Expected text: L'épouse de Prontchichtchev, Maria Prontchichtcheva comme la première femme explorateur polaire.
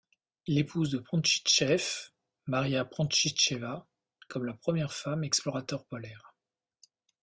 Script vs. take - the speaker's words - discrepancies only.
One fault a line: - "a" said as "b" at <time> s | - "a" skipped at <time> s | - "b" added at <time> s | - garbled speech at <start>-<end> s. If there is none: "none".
none